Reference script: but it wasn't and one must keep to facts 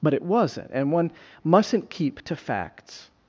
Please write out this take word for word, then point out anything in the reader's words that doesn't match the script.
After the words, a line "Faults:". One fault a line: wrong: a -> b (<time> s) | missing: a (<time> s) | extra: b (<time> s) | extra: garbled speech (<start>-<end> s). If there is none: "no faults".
but it wasn't and one mustn't keep to facts
Faults:
wrong: must -> mustn't (1.4 s)